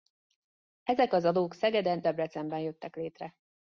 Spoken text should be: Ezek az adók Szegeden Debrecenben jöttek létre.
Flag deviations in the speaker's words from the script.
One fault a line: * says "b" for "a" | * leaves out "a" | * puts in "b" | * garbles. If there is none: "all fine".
all fine